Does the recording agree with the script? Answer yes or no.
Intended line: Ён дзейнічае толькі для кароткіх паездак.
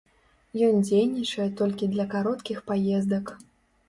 yes